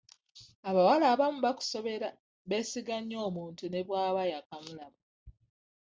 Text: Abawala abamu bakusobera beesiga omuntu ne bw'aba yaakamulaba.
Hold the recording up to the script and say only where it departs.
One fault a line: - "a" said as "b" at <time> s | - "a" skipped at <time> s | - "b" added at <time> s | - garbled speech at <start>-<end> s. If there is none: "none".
- "nnyo" added at 3.0 s